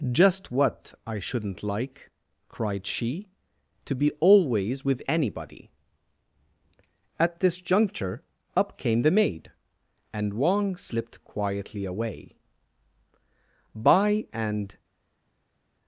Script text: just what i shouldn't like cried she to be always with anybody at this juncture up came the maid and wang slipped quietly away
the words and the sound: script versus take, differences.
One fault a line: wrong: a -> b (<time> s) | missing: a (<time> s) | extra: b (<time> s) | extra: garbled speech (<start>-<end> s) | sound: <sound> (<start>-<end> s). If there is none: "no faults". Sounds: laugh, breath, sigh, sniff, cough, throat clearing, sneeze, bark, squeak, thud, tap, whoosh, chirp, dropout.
extra: by and (13.7 s)